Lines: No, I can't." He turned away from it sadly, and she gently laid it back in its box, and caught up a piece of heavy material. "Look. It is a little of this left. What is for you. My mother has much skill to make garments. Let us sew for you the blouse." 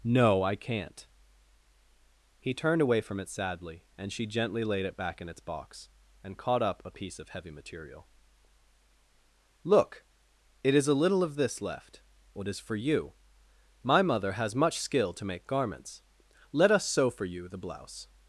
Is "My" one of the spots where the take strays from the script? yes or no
no